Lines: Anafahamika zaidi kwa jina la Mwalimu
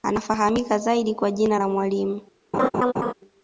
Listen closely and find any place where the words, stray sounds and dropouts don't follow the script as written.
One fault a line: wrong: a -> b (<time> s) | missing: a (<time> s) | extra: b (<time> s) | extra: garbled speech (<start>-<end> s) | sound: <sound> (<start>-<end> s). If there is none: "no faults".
sound: laugh (2.5-3.1 s)